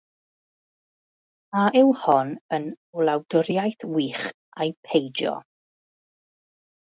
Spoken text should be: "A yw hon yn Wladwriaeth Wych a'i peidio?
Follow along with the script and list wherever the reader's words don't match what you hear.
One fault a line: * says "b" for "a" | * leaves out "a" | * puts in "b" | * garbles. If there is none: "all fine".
all fine